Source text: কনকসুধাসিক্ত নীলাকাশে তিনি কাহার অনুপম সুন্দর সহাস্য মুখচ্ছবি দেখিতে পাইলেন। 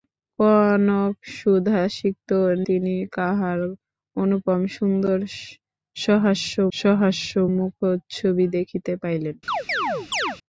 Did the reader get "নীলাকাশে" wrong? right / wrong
wrong